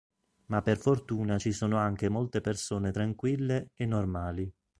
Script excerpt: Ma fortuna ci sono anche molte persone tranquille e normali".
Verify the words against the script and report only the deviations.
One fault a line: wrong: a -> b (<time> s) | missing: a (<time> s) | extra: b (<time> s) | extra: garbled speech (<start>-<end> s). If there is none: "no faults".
extra: per (0.6 s)